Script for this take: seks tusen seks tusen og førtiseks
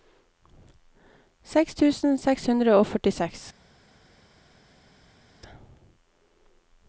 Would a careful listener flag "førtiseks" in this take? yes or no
no